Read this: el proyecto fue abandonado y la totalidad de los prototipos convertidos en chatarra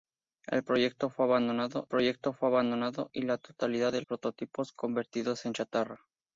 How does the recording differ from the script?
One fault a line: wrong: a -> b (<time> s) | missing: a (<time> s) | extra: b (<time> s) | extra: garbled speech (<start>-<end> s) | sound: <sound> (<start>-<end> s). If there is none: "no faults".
extra: proyecto fue abandonado (1.9 s)
missing: los (4.0 s)